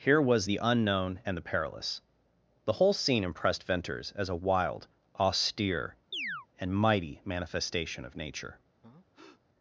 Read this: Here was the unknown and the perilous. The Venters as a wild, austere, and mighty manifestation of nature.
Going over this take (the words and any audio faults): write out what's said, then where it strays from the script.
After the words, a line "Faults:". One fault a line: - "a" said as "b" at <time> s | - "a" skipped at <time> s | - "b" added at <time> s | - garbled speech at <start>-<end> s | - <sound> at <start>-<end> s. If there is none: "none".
Here was the unknown and the perilous. The whole scene impressed Venters as a wild, austere, and mighty manifestation of nature.
Faults:
- "whole scene impressed" added at 2.7 s
- chirp at 6.1-6.5 s
- breath at 8.8-9.4 s